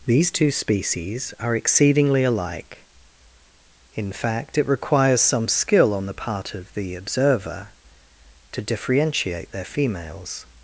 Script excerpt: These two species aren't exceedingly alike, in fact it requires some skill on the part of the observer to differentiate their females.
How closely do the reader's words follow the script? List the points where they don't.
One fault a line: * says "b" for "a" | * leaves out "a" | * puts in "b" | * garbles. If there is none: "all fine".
* says "are" for "aren't"